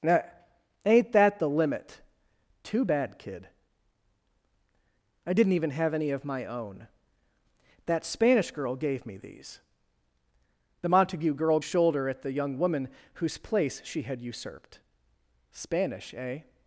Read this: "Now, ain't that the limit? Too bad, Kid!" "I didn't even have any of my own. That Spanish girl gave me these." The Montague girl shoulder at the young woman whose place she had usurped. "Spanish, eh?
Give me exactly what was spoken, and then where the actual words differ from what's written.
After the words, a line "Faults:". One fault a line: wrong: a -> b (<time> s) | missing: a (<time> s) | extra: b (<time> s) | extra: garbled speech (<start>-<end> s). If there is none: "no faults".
"Now, ain't that the limit? Too bad, Kid!" "I didn't even have any of my own. That Spanish girl gave me these." The Montague girl shoulder at the young woman whose place she had usurped. "Spanish, eh?
Faults:
no faults